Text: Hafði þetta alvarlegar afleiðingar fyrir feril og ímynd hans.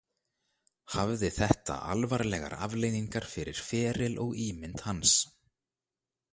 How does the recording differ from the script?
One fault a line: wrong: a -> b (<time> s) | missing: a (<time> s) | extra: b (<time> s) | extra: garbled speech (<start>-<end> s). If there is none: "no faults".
no faults